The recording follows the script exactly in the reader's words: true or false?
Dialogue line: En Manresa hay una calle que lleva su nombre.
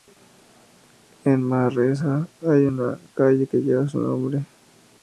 true